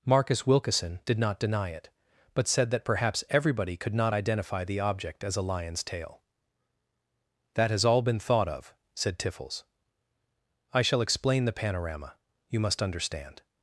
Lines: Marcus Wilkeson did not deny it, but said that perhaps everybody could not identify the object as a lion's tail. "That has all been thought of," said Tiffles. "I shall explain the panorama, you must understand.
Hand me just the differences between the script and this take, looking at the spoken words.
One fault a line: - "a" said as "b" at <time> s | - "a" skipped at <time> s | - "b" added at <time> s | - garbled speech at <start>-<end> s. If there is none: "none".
none